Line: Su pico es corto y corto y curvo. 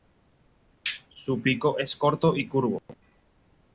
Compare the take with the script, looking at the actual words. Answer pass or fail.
fail